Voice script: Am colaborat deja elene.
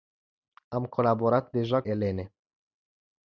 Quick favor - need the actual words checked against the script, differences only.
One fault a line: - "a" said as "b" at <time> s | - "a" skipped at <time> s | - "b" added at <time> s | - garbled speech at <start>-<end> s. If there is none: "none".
none